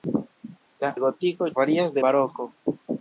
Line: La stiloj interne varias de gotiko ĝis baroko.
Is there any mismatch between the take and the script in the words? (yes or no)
yes